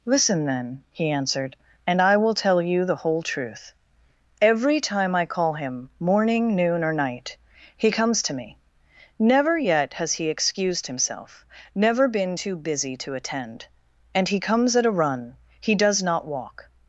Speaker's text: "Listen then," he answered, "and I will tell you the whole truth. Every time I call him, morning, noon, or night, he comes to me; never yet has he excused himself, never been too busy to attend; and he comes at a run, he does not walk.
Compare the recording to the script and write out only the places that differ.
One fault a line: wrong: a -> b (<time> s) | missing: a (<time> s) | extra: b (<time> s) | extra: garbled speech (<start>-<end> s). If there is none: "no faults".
no faults